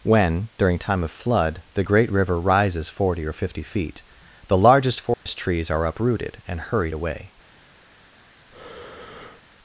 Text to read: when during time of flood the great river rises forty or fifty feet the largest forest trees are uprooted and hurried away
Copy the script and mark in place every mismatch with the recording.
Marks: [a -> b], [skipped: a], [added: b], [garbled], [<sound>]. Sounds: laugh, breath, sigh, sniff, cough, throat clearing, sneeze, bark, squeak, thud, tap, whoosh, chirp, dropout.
when during time of flood the great river rises forty or fifty feet the largest forest [dropout] trees are uprooted and hurried away [breath]